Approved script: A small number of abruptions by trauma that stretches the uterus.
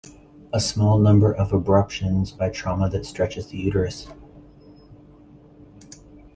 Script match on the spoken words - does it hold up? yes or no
yes